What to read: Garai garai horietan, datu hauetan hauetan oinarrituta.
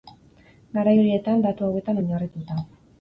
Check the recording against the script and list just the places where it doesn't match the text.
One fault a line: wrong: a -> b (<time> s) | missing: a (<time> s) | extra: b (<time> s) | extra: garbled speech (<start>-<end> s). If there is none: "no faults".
missing: garai (0.9 s)
missing: hauetan (2.0 s)